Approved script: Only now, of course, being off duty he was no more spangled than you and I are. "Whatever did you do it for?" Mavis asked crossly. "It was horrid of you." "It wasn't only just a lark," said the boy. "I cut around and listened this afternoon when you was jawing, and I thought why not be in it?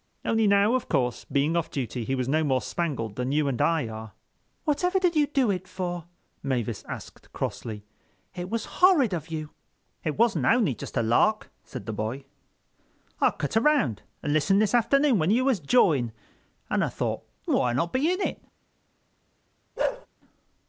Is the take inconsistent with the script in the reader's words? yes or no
no